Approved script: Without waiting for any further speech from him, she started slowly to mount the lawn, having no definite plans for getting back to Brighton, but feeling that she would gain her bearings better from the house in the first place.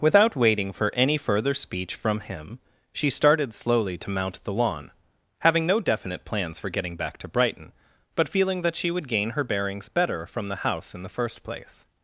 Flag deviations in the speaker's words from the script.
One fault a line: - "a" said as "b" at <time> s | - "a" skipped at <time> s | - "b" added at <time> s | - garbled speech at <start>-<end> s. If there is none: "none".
none